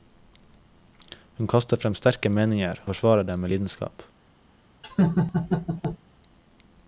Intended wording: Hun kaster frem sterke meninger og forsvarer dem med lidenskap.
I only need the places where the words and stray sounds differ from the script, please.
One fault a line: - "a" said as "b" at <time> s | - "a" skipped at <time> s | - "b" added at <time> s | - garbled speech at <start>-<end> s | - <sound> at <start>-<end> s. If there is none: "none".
- "og" skipped at 2.8 s
- laugh at 4.8-6.0 s